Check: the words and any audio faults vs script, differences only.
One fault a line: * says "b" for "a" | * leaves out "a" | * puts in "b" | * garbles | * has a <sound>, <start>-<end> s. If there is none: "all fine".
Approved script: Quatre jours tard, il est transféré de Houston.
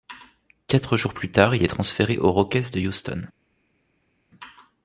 * puts in "plus"
* puts in "aux Rockets"